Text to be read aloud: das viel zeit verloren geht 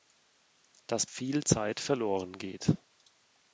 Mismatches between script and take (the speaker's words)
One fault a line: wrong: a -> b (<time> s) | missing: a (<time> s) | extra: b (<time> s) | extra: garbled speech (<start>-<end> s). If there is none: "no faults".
no faults